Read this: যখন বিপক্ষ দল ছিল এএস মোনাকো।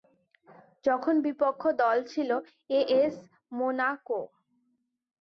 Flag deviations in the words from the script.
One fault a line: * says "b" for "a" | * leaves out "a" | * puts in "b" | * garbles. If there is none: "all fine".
all fine